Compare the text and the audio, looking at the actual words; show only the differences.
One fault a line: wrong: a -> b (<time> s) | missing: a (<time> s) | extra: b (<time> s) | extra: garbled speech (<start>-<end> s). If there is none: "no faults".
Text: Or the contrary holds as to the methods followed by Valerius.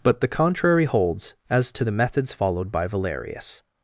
wrong: Or -> But (0.0 s)